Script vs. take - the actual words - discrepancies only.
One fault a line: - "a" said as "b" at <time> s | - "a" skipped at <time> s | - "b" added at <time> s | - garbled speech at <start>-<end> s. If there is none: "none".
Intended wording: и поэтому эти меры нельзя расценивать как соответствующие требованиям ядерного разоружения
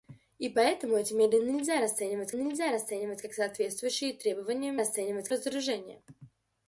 - "нельзя расценивать" added at 2.3 s
- "ядерного" said as "расценивать" at 4.8 s